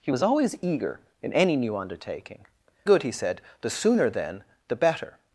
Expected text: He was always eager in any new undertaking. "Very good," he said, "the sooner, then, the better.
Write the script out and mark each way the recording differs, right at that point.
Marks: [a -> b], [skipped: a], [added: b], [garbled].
He was always eager in any new undertaking. [skipped: "Very] good," he said, "the sooner, then, the better.